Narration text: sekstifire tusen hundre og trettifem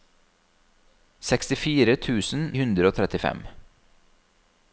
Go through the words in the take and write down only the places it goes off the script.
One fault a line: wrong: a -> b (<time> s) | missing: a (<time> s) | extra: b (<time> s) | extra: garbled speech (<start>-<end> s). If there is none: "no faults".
no faults